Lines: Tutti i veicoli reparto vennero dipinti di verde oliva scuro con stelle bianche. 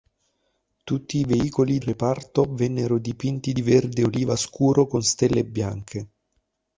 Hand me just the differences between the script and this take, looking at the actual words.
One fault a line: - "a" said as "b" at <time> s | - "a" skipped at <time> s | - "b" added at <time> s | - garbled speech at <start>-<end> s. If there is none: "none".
none